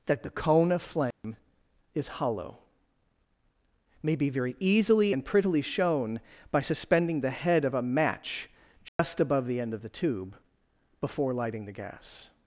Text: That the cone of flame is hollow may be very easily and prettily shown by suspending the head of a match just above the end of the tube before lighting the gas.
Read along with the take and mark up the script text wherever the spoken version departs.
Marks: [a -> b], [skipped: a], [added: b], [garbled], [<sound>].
That the cone of flame [dropout] is hollow may be very easily and prettily shown by suspending the head of a match just [dropout] above the end of the tube before lighting the gas.